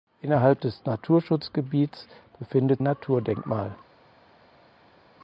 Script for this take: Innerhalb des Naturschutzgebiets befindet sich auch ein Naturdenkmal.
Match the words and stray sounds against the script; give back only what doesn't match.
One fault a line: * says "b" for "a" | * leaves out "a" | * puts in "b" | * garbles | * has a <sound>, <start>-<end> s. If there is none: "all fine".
* leaves out "sich auch ein"